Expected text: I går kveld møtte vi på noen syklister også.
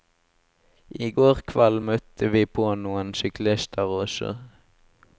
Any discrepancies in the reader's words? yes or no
no